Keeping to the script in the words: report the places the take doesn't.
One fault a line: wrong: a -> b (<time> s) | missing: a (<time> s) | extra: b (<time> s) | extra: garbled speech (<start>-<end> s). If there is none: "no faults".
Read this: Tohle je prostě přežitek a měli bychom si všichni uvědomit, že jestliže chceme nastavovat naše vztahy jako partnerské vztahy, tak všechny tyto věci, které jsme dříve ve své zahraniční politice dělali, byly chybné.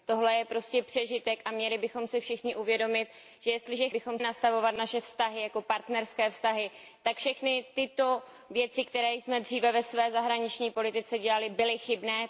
wrong: chceme -> bychom (3.9 s)